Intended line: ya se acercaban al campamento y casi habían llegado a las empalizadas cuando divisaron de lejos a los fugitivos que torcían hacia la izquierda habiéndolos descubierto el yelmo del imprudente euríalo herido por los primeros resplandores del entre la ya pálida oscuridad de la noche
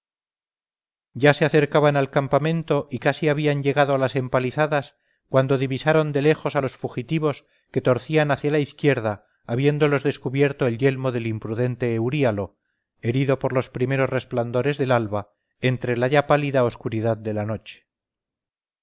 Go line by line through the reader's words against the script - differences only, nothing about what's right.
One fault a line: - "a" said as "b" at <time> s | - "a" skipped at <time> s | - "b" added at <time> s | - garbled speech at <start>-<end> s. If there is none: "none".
- "alba" added at 14.9 s